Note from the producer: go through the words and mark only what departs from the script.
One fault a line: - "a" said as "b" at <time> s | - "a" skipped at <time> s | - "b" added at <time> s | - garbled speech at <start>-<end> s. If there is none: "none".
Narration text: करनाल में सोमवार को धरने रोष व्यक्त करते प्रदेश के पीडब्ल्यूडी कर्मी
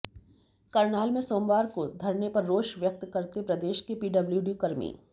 - "पर" added at 2.3 s